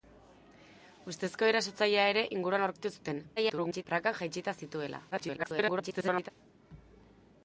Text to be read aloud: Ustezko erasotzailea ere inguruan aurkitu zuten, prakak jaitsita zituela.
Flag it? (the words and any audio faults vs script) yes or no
yes